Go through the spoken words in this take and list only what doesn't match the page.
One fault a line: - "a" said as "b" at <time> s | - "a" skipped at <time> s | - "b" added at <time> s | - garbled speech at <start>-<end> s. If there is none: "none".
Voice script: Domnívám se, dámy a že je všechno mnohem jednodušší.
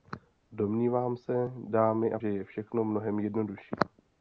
none